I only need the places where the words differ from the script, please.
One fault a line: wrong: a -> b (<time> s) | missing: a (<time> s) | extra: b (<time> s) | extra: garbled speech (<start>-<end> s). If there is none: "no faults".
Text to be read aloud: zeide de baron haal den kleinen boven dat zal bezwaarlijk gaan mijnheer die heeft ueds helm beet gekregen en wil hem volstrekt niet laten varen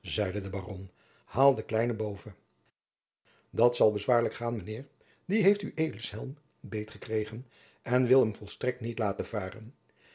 no faults